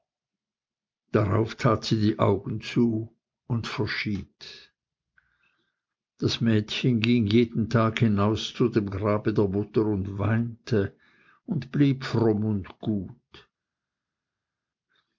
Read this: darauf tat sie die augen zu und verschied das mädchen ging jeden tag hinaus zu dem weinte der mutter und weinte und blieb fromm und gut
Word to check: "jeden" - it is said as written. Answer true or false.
true